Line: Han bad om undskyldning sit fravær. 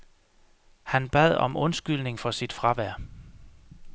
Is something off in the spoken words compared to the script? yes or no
yes